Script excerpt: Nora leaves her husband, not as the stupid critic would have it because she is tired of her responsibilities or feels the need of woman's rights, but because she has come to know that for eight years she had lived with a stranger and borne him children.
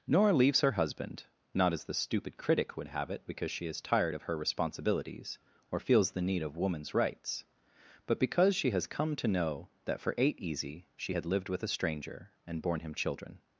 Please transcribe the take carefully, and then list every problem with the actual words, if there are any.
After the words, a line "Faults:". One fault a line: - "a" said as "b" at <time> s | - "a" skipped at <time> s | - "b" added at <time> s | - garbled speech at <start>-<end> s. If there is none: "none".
Nora leaves her husband, not as the stupid critic would have it because she is tired of her responsibilities or feels the need of woman's rights, but because she has come to know that for eight easy she had lived with a stranger and borne him children.
Faults:
- "years" said as "easy" at 10.4 s